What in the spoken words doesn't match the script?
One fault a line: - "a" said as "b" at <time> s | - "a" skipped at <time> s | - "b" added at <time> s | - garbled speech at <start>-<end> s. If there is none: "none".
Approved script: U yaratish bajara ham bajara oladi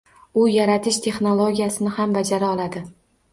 - "bajara" said as "texnologiyasini" at 1.1 s